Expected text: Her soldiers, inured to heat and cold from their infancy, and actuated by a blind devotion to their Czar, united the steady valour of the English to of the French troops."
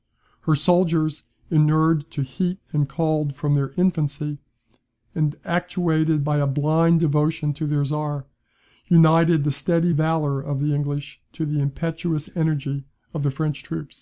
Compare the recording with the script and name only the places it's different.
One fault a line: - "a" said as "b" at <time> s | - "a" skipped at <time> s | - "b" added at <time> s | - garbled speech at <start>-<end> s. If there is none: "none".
- "the impetuous energy" added at 11.4 s